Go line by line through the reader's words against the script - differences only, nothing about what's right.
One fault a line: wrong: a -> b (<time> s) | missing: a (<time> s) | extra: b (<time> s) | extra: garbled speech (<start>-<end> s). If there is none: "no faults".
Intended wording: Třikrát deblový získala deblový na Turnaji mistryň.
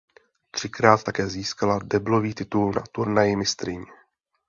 wrong: deblový -> také (1.0 s)
extra: titul (2.3 s)